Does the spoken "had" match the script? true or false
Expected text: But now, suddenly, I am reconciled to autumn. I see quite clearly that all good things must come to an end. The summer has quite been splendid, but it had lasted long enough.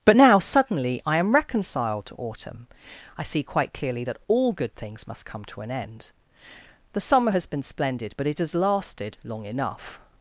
false